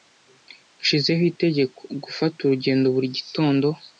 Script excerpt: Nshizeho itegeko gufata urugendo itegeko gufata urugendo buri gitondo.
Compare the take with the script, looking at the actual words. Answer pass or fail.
fail